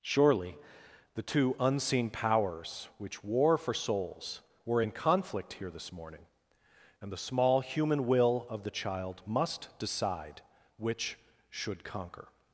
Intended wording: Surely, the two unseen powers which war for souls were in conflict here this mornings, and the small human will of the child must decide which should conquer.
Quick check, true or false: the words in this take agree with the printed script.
false